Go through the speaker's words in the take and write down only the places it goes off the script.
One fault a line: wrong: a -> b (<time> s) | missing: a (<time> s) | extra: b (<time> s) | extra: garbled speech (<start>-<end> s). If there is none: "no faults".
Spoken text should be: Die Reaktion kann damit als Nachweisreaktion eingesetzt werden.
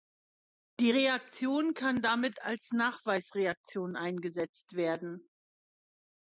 no faults